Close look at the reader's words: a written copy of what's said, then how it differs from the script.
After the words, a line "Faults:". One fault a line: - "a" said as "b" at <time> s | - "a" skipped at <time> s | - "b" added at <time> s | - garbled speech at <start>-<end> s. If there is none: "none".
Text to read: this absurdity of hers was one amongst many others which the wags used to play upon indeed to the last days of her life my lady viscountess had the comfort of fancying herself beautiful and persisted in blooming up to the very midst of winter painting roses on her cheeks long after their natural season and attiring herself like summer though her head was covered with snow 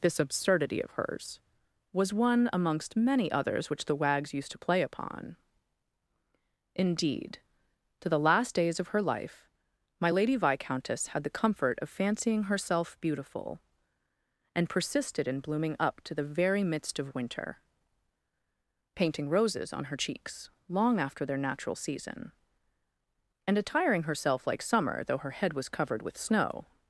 this absurdity of hers was one amongst many others which the wags used to play upon indeed to the last days of her life my lady viscountess had the comfort of fancying herself beautiful and persisted in blooming up to the very midst of winter painting roses on her cheeks long after their natural season and attiring herself like summer though her head was covered with snow
Faults:
none